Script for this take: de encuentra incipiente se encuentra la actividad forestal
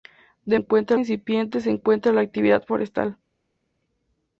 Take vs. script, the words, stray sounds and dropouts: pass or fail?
pass